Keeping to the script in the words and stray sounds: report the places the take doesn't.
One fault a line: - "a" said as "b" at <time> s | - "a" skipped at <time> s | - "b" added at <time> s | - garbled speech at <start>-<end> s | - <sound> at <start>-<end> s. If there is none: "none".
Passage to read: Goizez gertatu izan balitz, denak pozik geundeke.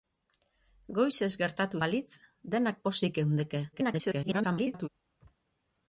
- "izan" skipped at 1.8 s
- garbled speech at 3.7-4.9 s